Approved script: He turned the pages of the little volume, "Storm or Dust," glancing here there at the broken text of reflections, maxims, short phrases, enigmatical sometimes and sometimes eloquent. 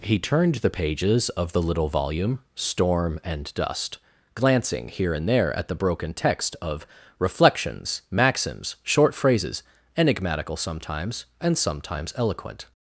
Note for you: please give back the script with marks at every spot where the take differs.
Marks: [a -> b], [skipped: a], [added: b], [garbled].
He turned the pages of the little volume, "Storm [or -> and] Dust," glancing here [added: and] there at the broken text of reflections, maxims, short phrases, enigmatical sometimes and sometimes eloquent.